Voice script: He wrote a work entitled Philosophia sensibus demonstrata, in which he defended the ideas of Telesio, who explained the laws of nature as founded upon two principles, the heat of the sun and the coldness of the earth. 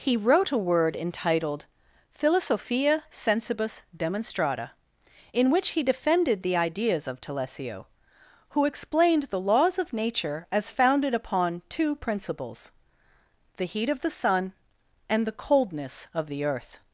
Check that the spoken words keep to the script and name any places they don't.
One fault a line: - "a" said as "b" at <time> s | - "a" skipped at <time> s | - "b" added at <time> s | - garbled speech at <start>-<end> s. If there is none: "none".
- "work" said as "word" at 0.6 s